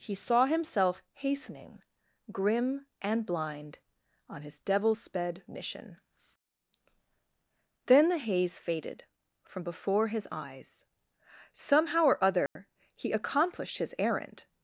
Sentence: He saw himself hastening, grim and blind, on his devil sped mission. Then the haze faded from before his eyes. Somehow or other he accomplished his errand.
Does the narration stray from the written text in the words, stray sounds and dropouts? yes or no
yes